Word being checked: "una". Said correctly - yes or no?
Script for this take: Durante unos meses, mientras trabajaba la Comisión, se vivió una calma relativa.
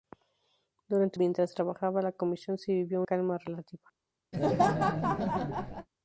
no